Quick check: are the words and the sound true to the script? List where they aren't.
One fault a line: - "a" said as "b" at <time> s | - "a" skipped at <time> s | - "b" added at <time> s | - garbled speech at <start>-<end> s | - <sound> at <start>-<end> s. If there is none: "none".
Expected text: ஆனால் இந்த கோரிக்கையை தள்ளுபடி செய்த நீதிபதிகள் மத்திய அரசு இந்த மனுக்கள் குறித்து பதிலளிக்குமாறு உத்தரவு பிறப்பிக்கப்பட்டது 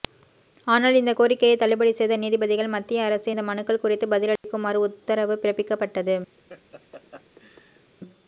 - dropout at 4.4-4.4 s
- laugh at 6.4-7.9 s